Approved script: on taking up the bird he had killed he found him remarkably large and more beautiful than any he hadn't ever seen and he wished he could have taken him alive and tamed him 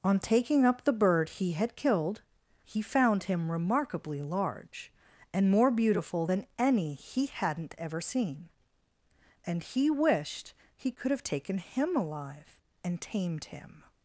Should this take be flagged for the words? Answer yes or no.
no